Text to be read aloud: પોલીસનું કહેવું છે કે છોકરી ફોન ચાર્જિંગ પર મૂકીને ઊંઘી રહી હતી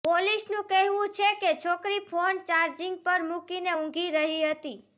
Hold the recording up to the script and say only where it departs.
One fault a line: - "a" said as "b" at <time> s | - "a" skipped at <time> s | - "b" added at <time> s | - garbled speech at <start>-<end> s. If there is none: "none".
none